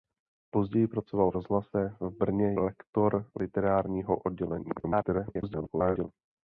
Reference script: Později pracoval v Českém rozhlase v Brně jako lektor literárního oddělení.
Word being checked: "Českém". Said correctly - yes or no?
no